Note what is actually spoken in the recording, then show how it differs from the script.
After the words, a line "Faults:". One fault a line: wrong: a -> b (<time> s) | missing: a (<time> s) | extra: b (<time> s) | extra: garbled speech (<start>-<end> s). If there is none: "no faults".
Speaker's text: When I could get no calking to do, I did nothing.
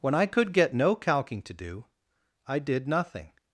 When I could get no calking to do, I did nothing.
Faults:
no faults